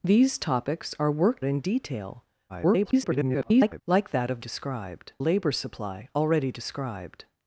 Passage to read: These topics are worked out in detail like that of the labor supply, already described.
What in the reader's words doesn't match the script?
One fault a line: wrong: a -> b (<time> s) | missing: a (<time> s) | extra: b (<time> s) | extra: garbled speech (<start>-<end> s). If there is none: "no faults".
missing: out (1.4 s)
extra: garbled speech (2.5-3.8 s)
wrong: the -> described (4.4 s)